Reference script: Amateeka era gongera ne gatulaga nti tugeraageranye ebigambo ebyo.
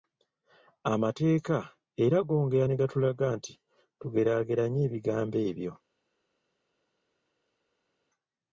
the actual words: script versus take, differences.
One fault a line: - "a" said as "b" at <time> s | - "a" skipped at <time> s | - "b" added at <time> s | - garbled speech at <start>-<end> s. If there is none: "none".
none